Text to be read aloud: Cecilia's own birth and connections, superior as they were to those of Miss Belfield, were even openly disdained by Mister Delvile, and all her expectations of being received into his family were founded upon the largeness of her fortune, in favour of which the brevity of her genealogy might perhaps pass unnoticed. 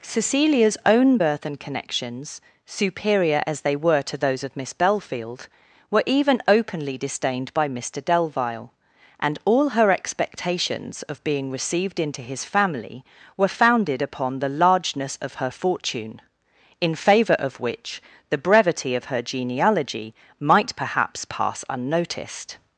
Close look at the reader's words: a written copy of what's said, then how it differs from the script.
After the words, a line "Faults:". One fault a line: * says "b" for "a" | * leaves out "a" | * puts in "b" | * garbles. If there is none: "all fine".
Cecilia's own birth and connections, superior as they were to those of Miss Belfield, were even openly disdained by Mister Delvile, and all her expectations of being received into his family were founded upon the largeness of her fortune, in favour of which the brevity of her genealogy might perhaps pass unnoticed.
Faults:
all fine